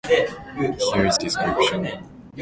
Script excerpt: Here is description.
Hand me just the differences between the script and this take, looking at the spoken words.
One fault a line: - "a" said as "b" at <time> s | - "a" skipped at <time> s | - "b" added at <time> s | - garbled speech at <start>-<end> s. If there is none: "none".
none